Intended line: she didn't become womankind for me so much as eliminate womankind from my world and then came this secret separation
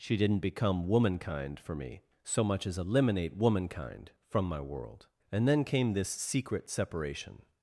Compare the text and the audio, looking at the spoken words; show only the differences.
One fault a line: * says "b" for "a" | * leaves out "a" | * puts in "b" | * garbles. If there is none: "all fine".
all fine